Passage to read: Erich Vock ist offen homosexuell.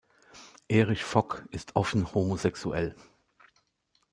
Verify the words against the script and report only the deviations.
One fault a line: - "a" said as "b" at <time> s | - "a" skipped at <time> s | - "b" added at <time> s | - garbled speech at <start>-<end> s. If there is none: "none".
none